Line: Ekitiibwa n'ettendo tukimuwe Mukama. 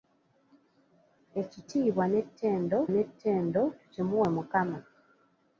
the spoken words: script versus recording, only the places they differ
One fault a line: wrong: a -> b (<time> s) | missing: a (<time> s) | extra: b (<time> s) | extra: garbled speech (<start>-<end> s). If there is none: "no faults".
extra: n'ettendo (2.9 s)